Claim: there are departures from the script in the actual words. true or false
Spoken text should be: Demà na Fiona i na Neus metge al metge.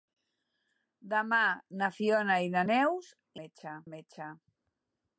false